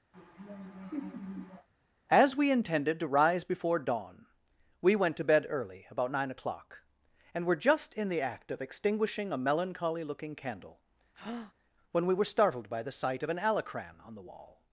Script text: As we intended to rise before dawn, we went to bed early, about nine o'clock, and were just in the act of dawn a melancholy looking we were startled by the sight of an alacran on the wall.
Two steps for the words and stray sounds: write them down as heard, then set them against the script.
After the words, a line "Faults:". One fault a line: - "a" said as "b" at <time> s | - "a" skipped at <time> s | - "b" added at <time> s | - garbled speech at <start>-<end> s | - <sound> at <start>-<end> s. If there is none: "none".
As we intended to rise before dawn, we went to bed early, about nine o'clock, and were just in the act of extinguishing a melancholy looking candle, when we were startled by the sight of an alacran on the wall.
Faults:
- laugh at 0.1-1.7 s
- "dawn" said as "extinguishing" at 8.6 s
- "candle when" added at 10.3 s
- breath at 11.1-11.5 s